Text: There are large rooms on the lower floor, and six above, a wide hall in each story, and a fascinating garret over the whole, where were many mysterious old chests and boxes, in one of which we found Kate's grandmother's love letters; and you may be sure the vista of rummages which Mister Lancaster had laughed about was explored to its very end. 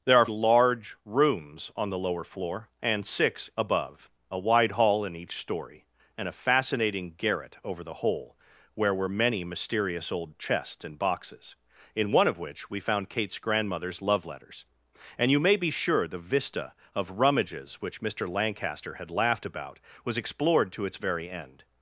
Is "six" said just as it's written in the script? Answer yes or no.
yes